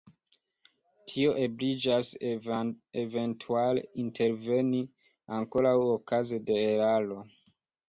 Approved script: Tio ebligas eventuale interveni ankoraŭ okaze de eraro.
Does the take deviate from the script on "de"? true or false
false